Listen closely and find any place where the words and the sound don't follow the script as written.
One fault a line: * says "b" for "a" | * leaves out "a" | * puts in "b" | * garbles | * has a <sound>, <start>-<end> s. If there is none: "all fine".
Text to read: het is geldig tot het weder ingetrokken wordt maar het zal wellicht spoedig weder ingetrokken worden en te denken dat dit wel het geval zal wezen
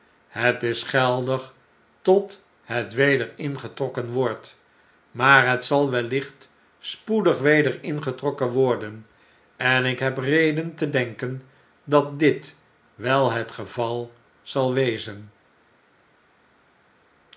* puts in "ik heb reden"